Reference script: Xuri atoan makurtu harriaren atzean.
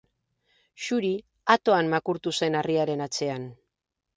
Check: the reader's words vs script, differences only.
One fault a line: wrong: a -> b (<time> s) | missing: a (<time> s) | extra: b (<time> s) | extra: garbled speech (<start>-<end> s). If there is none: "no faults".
extra: zen (2.4 s)